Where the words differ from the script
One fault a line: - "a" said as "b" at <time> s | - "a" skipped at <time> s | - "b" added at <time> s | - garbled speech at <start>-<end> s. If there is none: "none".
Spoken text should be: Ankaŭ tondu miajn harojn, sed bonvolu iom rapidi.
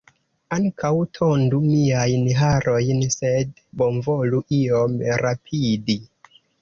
none